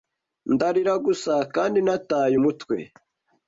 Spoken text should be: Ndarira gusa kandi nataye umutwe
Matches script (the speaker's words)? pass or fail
pass